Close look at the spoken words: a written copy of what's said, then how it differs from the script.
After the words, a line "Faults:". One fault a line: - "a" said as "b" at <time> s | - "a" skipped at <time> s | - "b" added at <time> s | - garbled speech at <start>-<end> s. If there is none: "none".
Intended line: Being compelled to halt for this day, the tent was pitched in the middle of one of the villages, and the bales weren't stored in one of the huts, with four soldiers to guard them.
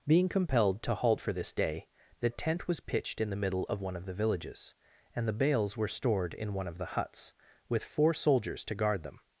Being compelled to halt for this day, the tent was pitched in the middle of one of the villages, and the bales were stored in one of the huts, with four soldiers to guard them.
Faults:
- "weren't" said as "were" at 5.8 s